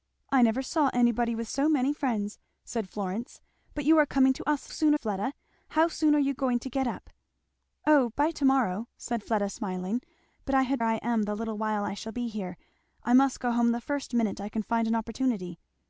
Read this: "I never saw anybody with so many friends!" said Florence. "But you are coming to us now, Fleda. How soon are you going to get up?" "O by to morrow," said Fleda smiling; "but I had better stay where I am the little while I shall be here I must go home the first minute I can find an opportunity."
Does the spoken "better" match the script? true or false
false